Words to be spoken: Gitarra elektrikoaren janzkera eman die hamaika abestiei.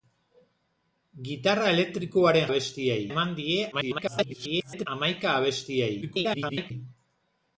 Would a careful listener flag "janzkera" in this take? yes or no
yes